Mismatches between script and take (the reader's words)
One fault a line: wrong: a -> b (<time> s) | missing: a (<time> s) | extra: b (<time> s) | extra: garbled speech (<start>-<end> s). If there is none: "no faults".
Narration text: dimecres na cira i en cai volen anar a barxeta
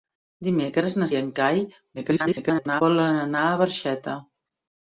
missing: cira (1.1 s)
extra: garbled speech (2.0-2.8 s)